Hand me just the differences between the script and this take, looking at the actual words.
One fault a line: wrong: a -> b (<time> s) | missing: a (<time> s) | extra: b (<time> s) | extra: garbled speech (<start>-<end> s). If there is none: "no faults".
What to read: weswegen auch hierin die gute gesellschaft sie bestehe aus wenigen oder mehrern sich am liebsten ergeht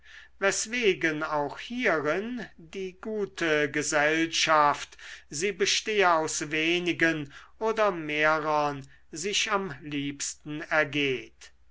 no faults